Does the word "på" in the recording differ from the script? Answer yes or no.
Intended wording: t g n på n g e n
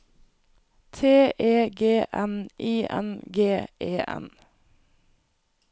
yes